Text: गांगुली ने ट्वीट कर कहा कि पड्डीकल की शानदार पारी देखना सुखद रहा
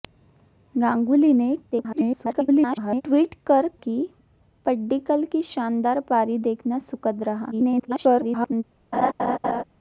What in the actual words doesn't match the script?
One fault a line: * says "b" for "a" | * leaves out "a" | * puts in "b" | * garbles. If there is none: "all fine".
* garbles
* leaves out "कहा"
* garbles